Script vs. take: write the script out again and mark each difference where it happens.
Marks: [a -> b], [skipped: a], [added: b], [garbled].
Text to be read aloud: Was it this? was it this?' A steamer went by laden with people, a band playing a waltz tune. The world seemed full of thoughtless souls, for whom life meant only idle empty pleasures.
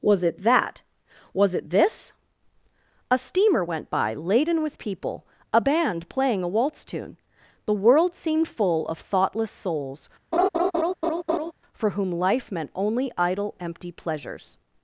Was it [this? -> that] was it this?' A steamer went by laden with people, a band playing a waltz tune. The world seemed full of thoughtless souls, for whom life meant only idle empty pleasures.